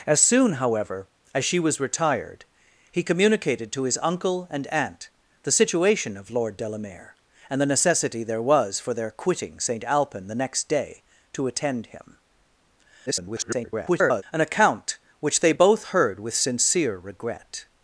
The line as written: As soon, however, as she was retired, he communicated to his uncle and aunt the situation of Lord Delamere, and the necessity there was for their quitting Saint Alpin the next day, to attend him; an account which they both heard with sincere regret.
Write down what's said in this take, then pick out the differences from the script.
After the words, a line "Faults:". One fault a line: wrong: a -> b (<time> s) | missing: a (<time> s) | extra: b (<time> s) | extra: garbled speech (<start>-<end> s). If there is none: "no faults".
As soon, however, as she was retired, he communicated to his uncle and aunt the situation of Lord Delamere, and the necessity there was for their quitting Saint Alpin the next day, to attend him; [garbled] an account which they both heard with sincere regret.
Faults:
extra: garbled speech (13.1-14.2 s)